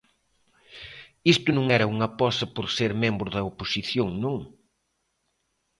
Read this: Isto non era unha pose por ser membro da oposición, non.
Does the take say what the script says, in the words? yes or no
yes